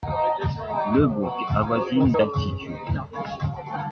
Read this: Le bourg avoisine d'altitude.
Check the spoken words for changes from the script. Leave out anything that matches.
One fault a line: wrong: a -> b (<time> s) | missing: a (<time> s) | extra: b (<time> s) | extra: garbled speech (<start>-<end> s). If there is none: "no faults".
no faults